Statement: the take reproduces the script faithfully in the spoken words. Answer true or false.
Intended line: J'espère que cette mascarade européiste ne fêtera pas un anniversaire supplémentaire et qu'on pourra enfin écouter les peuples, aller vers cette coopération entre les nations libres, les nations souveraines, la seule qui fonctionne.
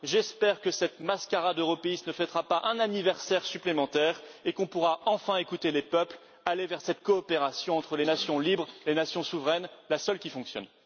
true